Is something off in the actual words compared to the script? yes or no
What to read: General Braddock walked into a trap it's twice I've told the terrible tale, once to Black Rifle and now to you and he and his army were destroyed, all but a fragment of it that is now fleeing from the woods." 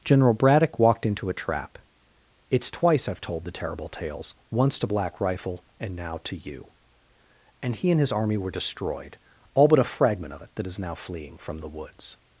yes